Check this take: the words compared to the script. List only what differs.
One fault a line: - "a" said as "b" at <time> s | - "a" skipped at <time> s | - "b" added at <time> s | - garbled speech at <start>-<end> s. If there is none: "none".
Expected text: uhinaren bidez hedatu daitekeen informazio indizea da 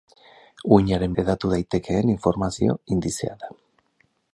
- "bidez" skipped at 1.1 s